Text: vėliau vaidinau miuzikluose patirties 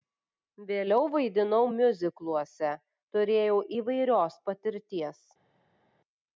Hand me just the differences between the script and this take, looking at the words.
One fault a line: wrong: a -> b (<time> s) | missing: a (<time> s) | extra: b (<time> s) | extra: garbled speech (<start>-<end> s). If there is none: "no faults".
extra: turėjau įvairios (3.2 s)